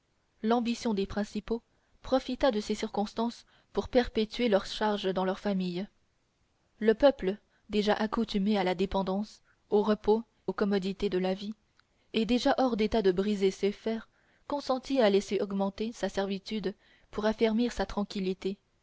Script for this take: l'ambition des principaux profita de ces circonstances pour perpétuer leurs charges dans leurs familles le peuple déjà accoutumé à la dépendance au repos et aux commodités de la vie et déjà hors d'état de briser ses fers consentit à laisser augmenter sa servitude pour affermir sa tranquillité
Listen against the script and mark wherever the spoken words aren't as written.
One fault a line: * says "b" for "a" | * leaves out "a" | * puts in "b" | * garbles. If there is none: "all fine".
* leaves out "et"